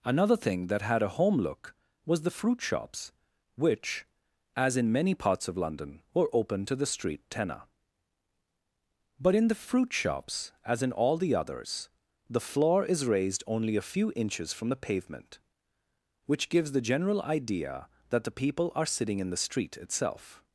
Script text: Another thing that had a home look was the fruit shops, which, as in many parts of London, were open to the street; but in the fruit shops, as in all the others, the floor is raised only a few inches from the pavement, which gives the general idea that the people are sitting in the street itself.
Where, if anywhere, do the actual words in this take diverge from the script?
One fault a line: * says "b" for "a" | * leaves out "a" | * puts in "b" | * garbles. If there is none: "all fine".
* puts in "tenor"